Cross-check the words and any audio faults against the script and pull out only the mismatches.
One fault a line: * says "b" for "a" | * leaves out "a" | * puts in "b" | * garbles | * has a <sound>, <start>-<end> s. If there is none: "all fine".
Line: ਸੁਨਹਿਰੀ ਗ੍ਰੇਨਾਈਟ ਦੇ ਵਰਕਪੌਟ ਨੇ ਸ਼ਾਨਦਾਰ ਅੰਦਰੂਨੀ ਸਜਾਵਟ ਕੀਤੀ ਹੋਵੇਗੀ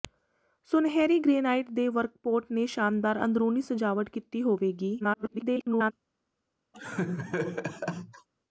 * garbles
* has a laugh, 6.7-8.3 s